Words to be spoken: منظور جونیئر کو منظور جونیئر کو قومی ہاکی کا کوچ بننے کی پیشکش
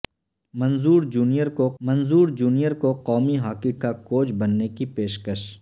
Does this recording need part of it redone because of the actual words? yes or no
no